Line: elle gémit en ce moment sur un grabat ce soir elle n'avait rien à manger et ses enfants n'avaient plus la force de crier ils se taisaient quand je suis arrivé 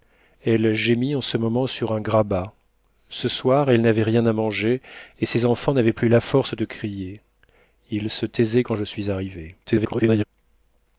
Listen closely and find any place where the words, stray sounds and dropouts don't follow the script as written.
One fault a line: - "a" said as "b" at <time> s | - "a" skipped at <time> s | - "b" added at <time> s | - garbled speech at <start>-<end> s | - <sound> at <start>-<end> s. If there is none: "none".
- garbled speech at 9.6-10.2 s